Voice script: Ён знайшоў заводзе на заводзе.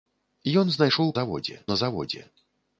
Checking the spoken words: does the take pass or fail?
pass